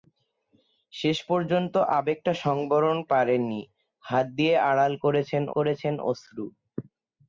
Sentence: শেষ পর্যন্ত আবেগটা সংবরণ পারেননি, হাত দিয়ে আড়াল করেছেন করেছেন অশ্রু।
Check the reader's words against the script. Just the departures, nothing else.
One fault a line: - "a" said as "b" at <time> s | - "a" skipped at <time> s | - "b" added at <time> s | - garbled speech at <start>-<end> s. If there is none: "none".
none